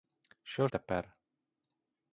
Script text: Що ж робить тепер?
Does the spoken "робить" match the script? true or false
false